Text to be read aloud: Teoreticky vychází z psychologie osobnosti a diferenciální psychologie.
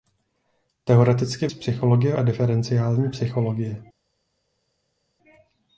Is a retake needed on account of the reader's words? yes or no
yes